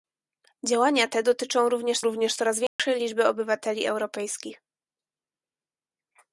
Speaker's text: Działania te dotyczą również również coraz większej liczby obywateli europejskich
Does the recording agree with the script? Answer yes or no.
yes